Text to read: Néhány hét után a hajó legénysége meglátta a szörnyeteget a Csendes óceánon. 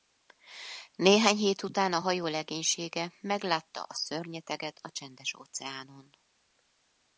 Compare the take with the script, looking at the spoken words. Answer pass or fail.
pass